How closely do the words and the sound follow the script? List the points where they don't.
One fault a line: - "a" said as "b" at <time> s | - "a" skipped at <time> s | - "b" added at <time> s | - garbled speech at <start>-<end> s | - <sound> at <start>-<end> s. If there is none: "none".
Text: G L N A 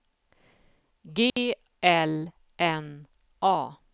- dropout at 1.3-1.4 s